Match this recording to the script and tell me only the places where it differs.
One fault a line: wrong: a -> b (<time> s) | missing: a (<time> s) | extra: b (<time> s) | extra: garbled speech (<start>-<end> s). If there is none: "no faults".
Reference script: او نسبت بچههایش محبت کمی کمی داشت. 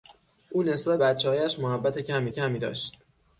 no faults